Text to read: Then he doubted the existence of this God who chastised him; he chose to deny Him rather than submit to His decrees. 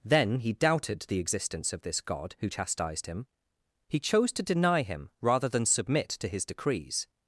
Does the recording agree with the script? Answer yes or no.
yes